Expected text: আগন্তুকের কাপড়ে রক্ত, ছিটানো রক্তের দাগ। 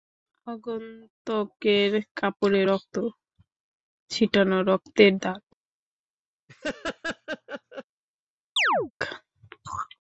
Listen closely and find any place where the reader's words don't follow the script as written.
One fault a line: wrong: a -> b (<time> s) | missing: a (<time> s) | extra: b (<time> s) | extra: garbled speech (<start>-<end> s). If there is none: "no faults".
no faults